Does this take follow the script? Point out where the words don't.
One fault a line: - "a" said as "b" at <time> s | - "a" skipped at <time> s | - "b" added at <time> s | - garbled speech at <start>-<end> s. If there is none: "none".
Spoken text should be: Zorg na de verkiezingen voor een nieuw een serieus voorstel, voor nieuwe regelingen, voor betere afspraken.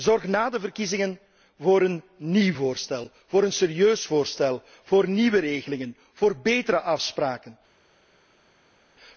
- "voorstel voor" added at 2.5 s